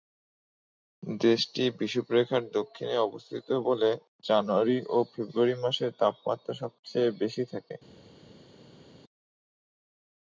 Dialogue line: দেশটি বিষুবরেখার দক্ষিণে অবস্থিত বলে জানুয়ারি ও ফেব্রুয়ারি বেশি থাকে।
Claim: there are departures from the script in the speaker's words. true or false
true